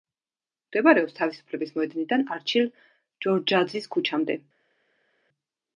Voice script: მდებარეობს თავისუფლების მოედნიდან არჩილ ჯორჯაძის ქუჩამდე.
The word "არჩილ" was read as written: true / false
true